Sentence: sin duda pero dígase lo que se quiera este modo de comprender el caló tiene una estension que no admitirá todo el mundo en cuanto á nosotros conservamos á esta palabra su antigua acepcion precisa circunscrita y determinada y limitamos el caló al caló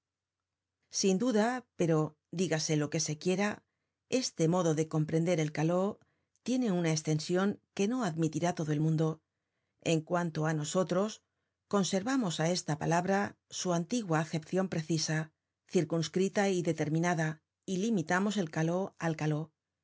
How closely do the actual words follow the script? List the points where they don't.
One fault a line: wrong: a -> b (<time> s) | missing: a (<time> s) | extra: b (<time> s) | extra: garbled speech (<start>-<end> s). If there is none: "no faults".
no faults